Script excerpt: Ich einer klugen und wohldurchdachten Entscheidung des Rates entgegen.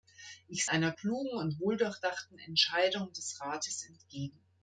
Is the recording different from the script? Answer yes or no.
no